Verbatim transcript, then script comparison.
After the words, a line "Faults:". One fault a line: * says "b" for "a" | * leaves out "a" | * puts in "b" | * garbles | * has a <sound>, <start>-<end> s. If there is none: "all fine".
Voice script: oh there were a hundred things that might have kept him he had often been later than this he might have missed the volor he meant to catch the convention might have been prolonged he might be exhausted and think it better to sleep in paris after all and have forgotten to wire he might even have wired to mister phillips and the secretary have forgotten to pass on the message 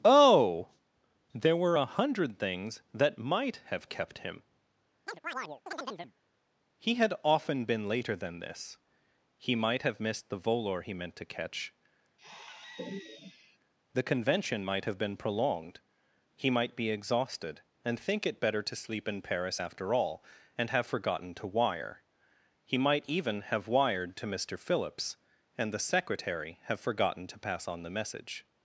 oh there were a hundred things that might have kept him he had often been later than this he might have missed the volor he meant to catch the convention might have been prolonged he might be exhausted and think it better to sleep in paris after all and have forgotten to wire he might even have wired to mister phillips and the secretary have forgotten to pass on the message
Faults:
* has a chirp, 5.1-6.1 s
* has a sigh, 12.2-13.6 s